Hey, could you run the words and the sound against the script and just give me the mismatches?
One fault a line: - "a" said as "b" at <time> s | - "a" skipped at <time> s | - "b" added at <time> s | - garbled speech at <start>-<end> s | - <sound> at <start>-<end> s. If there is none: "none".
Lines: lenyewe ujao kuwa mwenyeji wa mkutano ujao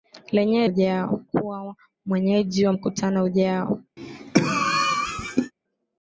- cough at 4.0-5.5 s